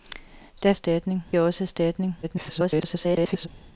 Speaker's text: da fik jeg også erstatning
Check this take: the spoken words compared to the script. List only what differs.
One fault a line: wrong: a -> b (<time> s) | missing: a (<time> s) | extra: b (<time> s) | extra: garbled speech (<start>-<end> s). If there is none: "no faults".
wrong: fik -> erstatning (0.7 s)
extra: garbled speech (2.2-3.5 s)